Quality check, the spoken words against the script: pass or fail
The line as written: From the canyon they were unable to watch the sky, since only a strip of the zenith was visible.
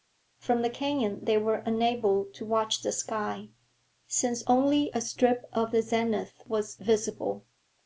pass